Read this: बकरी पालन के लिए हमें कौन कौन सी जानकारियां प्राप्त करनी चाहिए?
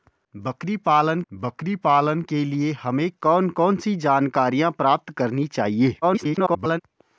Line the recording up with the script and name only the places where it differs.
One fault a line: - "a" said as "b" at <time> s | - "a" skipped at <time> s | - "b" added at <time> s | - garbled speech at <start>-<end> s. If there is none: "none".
- "बकरी पालन" added at 1.3 s
- garbled speech at 6.0-6.8 s